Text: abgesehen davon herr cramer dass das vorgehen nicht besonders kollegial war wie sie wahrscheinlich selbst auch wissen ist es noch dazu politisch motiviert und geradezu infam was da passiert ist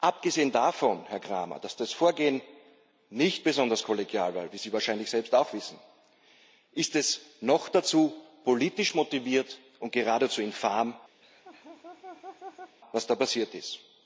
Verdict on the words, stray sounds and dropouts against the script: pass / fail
fail